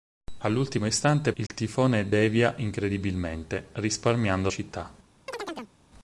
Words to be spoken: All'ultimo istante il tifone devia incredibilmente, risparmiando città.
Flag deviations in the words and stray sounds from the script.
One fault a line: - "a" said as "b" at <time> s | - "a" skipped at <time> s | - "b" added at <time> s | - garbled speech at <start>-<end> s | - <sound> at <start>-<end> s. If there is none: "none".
- dropout at 1.5-1.5 s
- chirp at 5.3-5.7 s